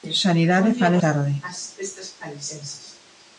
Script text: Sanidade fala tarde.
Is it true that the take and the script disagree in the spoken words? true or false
false